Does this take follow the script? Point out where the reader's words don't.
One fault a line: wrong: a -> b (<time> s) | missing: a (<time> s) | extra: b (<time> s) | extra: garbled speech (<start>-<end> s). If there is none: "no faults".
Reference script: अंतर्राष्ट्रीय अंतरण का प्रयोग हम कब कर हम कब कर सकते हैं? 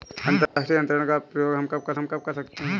no faults